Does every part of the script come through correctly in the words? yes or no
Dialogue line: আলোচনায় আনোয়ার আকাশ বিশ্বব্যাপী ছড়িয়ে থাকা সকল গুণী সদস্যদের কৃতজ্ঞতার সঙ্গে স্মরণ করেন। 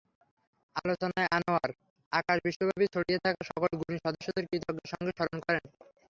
yes